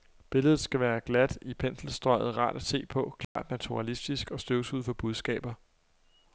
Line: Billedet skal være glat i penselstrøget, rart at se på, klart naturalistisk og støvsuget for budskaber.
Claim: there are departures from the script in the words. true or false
false